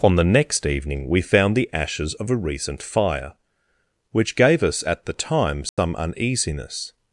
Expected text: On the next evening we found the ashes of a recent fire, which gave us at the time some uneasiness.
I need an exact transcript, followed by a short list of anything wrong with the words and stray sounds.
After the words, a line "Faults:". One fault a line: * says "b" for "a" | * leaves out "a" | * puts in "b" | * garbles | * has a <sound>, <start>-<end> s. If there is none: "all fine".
On the next evening we found the ashes of a recent fire, which gave us at the time some uneasiness.
Faults:
* has a dropout, 5.7-5.8 s